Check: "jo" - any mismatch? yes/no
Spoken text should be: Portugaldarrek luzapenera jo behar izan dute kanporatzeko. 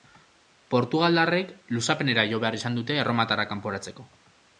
no